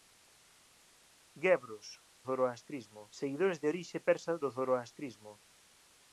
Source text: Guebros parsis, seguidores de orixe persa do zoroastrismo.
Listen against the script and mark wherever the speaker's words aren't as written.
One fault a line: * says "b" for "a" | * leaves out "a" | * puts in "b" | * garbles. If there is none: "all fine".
* says "zoroastrismo" for "parsis"